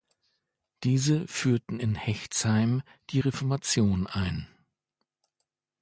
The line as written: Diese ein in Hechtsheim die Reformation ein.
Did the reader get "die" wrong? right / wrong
right